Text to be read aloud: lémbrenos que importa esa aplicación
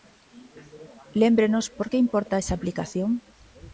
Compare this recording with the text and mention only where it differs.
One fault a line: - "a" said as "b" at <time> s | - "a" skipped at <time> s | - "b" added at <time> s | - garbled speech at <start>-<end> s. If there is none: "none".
- "por" added at 1.8 s